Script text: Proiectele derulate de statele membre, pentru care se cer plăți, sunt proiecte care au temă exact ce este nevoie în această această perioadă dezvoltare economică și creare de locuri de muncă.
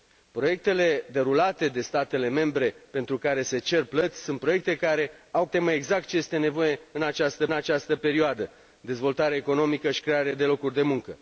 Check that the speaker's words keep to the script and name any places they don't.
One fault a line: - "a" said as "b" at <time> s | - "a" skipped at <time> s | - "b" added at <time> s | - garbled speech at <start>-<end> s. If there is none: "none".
none